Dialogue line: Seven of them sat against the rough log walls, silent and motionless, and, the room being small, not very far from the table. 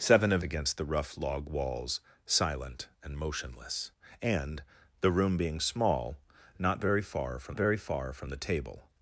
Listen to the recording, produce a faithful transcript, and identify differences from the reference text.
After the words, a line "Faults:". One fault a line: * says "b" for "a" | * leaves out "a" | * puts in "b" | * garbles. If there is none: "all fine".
Seven of against the rough log walls, silent and motionless, and, the room being small, not very far from very far from the table.
Faults:
* leaves out "them sat"
* puts in "very far from"